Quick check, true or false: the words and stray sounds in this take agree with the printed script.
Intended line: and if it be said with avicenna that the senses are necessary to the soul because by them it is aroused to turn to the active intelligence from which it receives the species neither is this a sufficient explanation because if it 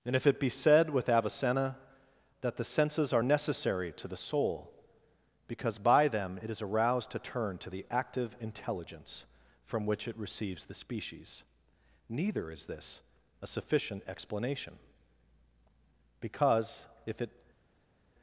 true